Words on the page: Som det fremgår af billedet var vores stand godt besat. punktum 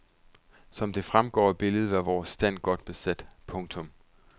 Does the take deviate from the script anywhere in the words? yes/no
no